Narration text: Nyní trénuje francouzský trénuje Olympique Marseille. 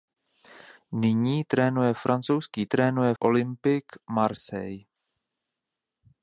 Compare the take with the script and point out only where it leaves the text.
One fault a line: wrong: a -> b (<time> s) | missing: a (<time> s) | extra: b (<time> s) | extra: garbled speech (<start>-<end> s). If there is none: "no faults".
no faults